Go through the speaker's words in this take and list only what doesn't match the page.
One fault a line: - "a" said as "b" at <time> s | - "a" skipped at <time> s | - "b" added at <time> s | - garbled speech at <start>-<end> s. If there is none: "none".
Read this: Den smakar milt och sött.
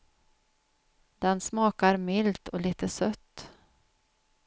- "lite" added at 2.6 s